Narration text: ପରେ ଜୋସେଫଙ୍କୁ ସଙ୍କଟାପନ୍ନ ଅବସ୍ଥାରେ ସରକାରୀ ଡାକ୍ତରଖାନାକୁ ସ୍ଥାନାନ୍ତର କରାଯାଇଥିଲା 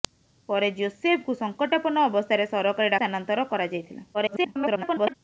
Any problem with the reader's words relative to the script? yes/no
yes